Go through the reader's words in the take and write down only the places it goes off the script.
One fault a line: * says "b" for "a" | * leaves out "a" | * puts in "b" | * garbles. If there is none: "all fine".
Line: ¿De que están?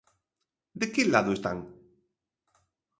* puts in "lado"